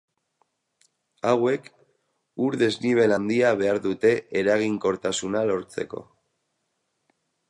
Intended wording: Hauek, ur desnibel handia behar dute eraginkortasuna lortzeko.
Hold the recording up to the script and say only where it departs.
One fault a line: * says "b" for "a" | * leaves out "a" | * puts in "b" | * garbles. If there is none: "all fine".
all fine